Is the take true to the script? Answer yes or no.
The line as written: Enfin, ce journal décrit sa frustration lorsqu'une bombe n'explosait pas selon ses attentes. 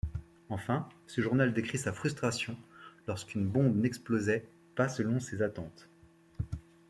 yes